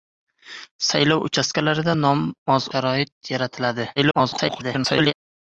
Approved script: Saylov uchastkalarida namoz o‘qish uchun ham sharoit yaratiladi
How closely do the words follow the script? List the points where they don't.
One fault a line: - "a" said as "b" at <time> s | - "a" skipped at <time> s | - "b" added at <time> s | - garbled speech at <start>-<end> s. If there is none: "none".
- "o‘qish uchun ham" skipped at 2.7 s
- garbled speech at 4.0-5.1 s